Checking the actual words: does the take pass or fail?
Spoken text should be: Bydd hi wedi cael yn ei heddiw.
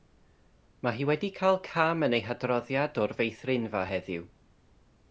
fail